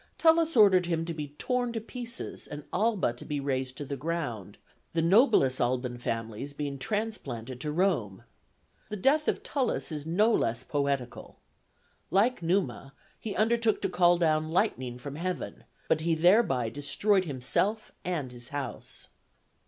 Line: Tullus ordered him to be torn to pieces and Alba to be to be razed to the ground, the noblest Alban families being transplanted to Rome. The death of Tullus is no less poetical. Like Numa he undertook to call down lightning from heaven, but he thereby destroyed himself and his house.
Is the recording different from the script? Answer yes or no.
yes